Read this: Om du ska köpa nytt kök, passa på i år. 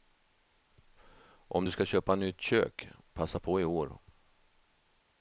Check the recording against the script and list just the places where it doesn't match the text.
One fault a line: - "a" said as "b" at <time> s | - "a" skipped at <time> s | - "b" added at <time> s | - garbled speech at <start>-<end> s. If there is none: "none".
none